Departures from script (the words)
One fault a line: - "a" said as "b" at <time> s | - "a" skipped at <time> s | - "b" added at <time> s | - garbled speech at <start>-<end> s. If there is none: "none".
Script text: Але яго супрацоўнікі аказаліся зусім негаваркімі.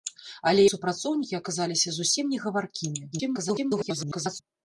- "яго" skipped at 0.6 s
- garbled speech at 3.1-4.4 s